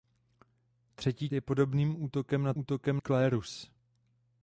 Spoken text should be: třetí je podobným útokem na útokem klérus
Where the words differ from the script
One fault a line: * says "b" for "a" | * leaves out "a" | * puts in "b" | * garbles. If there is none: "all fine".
all fine